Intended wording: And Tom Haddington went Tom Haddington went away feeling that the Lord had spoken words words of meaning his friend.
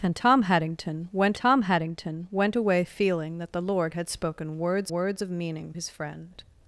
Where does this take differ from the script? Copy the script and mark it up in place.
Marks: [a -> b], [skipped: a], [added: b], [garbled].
And Tom Haddington went Tom Haddington went away feeling that the Lord had spoken words words of meaning his friend.